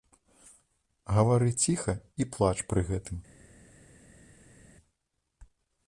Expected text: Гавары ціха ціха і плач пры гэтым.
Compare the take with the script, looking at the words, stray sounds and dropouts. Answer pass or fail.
fail